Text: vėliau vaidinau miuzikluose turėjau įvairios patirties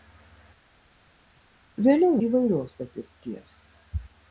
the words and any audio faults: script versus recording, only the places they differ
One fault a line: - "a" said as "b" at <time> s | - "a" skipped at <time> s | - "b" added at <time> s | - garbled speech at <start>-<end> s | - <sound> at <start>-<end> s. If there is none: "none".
- "vaidinau miuzikluose turėjau" skipped at 2.2 s